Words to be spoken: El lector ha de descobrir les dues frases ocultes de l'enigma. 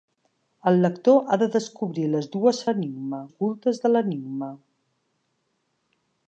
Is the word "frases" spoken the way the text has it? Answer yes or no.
no